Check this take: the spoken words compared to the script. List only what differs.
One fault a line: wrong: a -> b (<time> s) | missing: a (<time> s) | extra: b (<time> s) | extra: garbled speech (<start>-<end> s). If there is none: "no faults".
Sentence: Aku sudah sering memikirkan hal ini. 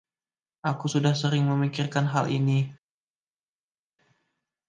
no faults